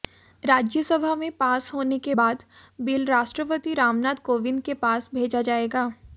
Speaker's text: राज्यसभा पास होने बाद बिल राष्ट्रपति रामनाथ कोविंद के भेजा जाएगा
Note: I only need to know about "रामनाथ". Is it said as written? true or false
true